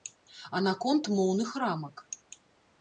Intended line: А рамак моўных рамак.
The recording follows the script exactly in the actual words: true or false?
false